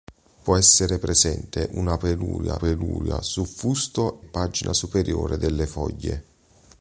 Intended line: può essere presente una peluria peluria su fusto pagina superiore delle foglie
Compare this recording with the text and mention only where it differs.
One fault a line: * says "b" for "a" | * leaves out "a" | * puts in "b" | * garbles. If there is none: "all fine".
all fine